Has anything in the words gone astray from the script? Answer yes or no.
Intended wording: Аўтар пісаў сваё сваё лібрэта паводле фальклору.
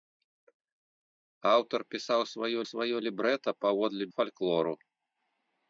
no